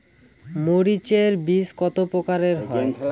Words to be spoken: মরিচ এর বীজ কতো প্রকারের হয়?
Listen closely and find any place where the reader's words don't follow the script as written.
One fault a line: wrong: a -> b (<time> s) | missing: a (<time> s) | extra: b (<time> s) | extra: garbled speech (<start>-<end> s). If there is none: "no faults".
no faults